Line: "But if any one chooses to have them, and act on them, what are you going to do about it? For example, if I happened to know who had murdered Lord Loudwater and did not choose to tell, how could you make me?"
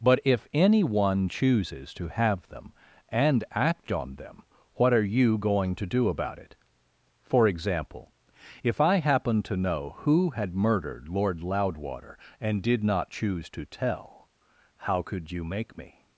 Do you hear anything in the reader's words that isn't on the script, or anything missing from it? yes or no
no